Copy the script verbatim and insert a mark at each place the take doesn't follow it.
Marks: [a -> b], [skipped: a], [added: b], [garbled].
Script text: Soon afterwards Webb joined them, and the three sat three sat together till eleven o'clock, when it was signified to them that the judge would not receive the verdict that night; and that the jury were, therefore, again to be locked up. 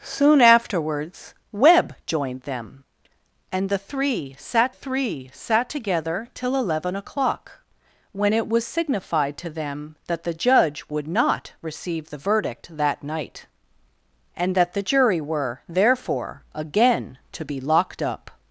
Soon afterwards Webb joined them, and the three sat three sat together till eleven o'clock, when it was signified to them that the judge would not receive the verdict that night; and that the jury were, therefore, again to be locked up.